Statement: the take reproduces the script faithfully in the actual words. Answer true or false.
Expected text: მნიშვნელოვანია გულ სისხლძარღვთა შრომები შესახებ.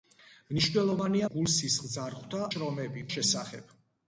true